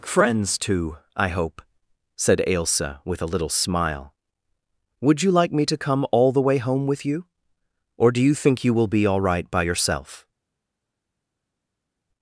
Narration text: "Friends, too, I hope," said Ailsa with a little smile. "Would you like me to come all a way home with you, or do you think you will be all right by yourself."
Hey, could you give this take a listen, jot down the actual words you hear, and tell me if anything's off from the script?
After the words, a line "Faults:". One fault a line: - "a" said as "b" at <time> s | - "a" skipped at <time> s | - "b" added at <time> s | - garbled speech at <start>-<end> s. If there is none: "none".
"Friends, too, I hope," said Ailsa with a little smile. "Would you like me to come all the way home with you, or do you think you will be all right by yourself."
Faults:
- "a" said as "the" at 6.3 s